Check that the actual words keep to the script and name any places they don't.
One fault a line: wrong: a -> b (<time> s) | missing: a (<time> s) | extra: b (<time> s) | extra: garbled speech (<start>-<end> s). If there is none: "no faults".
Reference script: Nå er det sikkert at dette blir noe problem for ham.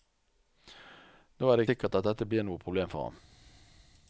no faults